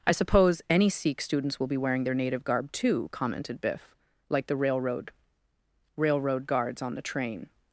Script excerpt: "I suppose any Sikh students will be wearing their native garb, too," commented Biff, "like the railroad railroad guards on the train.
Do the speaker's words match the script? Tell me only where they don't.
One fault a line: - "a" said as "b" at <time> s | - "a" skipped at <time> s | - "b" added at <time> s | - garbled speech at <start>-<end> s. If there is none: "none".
none